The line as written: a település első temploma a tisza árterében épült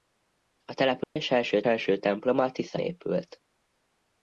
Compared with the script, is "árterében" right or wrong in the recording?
wrong